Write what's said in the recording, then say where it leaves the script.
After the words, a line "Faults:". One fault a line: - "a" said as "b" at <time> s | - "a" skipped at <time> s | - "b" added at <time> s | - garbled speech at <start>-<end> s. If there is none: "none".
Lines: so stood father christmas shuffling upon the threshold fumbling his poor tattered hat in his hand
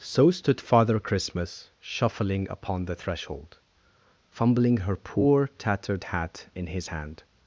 so stood father christmas shuffling upon the threshold fumbling her poor tattered hat in his hand
Faults:
- "his" said as "her" at 4.8 s